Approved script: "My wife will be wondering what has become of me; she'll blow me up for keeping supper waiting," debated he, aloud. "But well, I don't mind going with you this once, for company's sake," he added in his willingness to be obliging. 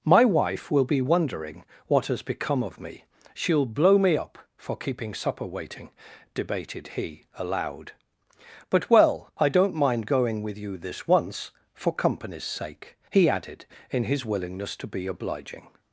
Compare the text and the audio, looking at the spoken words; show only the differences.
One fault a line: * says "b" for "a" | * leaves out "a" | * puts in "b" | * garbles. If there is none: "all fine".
all fine